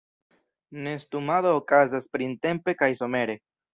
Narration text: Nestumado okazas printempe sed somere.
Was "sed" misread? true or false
true